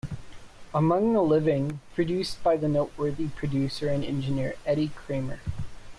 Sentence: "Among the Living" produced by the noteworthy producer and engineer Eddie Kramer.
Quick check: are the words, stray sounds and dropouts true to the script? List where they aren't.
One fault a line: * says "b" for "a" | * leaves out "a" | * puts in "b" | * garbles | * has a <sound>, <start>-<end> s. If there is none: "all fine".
all fine